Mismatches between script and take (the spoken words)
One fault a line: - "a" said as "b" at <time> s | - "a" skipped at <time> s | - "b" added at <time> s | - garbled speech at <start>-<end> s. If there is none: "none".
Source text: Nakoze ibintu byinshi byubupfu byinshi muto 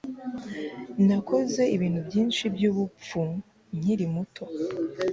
- "byinshi" said as "nkiri" at 3.8 s